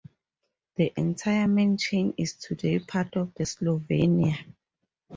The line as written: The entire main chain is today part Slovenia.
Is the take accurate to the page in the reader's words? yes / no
no